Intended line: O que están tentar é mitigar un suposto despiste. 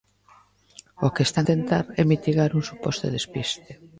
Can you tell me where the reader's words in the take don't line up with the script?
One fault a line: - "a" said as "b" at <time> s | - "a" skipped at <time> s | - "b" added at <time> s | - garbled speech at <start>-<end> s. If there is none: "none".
none